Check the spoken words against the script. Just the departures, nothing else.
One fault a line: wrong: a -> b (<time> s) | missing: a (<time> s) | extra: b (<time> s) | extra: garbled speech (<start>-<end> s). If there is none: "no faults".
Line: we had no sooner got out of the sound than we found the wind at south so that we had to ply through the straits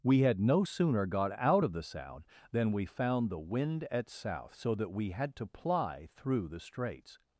no faults